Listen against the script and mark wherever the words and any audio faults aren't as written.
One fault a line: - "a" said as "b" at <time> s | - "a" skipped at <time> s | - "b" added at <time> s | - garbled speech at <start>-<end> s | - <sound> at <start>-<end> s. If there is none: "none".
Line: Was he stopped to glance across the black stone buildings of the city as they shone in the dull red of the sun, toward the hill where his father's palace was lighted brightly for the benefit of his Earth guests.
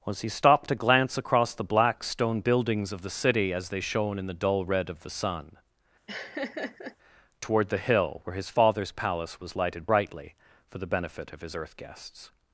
- laugh at 6.1-7.0 s